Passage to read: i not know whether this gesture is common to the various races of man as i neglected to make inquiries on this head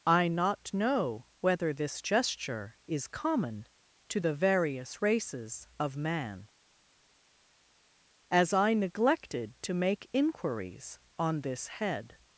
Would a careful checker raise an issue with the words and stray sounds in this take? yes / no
no